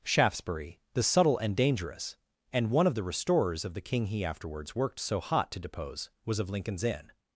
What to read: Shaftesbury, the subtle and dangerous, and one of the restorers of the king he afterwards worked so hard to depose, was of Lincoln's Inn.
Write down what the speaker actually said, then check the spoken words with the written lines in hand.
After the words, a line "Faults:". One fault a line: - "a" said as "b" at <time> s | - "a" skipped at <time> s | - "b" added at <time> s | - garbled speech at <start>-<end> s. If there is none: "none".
Shaftesbury, the subtle and dangerous, and one of the restorers of the king he afterwards worked so hot to depose, was of Lincoln's Inn.
Faults:
- "hard" said as "hot" at 5.2 s